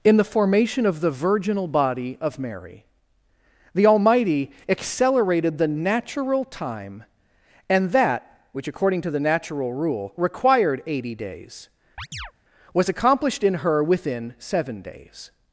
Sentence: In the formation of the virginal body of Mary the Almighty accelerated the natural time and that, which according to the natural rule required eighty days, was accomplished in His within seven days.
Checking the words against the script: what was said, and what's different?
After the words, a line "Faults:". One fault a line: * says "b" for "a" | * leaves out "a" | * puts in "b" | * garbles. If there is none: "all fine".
In the formation of the virginal body of Mary the Almighty accelerated the natural time and that, which according to the natural rule required eighty days, was accomplished in Her within seven days.
Faults:
* says "Her" for "His"